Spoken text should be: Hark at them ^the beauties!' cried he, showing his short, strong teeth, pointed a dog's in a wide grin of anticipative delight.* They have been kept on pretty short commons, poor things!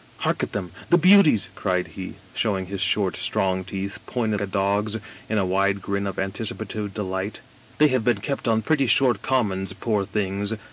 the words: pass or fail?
pass